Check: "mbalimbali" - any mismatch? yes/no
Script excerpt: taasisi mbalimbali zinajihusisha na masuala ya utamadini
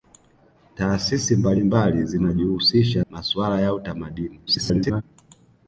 no